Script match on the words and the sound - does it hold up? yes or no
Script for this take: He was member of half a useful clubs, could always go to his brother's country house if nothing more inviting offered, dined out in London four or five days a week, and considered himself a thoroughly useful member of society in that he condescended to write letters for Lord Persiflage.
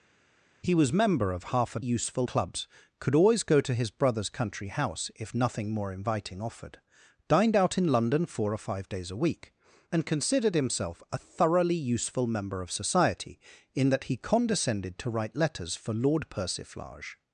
yes